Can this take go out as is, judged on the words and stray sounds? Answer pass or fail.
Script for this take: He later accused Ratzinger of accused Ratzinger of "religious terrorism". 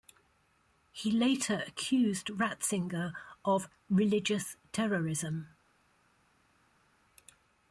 fail